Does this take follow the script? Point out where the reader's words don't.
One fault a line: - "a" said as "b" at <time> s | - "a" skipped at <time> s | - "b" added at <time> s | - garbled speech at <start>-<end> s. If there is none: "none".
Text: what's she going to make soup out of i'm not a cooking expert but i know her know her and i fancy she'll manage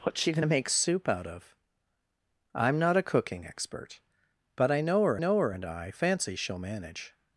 none